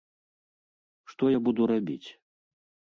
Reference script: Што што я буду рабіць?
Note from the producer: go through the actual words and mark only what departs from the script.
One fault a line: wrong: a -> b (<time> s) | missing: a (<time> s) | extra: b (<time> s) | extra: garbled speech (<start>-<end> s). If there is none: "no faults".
missing: што (1.2 s)